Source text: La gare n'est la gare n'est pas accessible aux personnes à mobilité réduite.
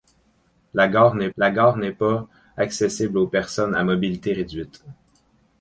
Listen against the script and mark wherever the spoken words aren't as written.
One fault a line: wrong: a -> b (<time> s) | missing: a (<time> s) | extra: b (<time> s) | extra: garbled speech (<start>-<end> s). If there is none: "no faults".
no faults